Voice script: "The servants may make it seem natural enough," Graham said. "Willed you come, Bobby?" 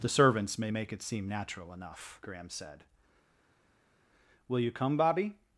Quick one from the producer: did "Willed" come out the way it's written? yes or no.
no